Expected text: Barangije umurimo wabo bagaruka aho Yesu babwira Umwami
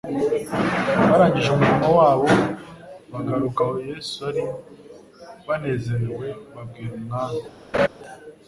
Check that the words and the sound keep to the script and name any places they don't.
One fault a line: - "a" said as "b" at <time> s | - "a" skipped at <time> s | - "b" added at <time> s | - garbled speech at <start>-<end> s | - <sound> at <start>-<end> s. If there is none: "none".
- "ari banezerewe" added at 4.3 s
- laugh at 7.7-7.9 s